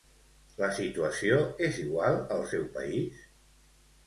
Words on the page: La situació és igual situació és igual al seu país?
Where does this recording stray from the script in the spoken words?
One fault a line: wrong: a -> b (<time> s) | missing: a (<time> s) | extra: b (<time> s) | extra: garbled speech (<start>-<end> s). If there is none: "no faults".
missing: situació és igual (2.2 s)